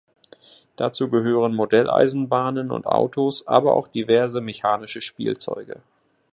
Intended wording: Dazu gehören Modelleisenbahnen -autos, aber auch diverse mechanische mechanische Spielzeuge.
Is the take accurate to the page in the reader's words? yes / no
no